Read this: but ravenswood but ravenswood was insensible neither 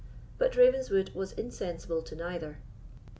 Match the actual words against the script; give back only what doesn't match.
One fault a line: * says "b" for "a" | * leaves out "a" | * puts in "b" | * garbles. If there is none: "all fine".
* leaves out "but ravenswood"
* puts in "to"